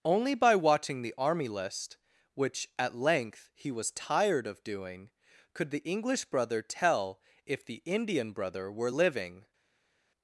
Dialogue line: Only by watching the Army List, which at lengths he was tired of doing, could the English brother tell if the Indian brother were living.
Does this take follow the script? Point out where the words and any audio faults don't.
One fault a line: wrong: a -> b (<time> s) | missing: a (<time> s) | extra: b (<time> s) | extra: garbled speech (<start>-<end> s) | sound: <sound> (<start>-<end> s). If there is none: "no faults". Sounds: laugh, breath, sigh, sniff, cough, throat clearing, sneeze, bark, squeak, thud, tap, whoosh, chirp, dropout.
wrong: lengths -> length (3.0 s)